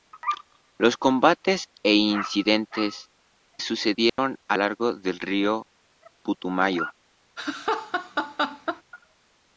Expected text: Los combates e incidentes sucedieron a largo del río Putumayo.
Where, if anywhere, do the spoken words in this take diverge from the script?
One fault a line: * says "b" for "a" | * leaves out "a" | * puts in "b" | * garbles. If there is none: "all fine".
all fine